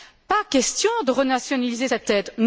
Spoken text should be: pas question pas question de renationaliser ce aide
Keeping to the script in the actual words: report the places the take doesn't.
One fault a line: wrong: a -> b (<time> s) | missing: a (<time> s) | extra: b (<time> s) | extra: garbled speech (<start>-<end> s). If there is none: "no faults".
missing: pas question (0.9 s)
wrong: ce -> cette (1.8 s)